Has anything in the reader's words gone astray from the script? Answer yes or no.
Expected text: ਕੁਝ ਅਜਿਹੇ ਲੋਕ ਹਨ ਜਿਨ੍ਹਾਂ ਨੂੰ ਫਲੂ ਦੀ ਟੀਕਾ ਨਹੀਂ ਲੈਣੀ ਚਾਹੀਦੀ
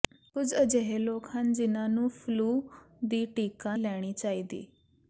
yes